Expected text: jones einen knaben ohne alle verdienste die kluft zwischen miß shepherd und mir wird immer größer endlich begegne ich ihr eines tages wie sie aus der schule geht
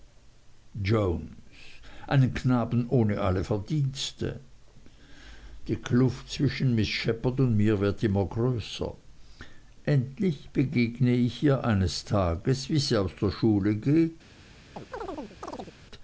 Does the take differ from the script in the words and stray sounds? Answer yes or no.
yes